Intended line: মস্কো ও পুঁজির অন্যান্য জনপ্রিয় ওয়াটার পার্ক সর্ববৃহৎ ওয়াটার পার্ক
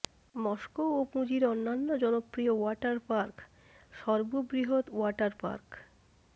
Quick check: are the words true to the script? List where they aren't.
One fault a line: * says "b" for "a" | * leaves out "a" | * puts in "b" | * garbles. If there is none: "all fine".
all fine